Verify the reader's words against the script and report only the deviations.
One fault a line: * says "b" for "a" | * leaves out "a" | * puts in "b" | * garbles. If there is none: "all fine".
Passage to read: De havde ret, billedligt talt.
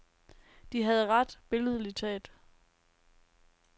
all fine